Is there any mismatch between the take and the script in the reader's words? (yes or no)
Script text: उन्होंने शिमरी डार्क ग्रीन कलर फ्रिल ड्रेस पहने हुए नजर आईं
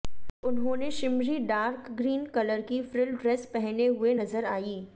yes